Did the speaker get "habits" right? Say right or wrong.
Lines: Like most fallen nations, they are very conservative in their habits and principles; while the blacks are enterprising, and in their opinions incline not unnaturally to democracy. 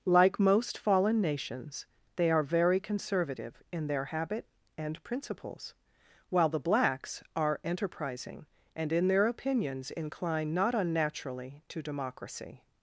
wrong